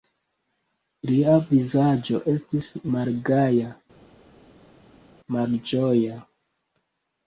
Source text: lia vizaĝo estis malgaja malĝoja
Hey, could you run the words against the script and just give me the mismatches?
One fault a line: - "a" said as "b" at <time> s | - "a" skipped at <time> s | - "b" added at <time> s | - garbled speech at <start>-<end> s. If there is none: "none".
none